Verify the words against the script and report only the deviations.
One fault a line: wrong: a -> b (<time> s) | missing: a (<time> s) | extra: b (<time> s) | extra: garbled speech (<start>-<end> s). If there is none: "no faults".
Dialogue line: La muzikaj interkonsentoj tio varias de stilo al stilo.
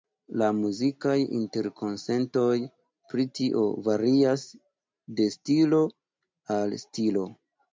extra: pri (3.1 s)